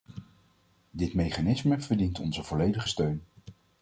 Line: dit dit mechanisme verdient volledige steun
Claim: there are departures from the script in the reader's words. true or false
true